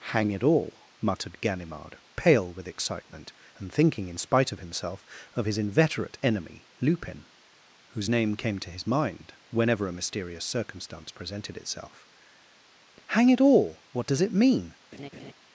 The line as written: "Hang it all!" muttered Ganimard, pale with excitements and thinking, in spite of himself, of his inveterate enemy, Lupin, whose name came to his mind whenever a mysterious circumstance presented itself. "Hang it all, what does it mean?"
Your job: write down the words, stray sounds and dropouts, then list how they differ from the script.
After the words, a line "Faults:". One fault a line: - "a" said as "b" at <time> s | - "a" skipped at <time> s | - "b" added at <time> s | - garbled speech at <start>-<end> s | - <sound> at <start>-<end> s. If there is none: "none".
"Hang it all!" muttered Ganimard, pale with excitement and thinking, in spite of himself, of his inveterate enemy, Lupin, whose name came to his mind whenever a mysterious circumstance presented itself. "Hang it all, what does it mean?"
Faults:
- "excitements" said as "excitement" at 2.7 s
- laugh at 14.9-15.3 s